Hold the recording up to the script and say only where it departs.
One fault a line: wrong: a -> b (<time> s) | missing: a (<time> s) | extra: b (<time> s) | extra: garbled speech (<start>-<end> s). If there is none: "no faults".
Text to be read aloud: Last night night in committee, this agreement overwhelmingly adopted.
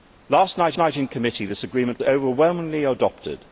no faults